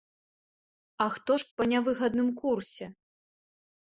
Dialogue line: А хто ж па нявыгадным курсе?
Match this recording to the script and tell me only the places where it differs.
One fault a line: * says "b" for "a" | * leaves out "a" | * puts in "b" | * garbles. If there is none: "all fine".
all fine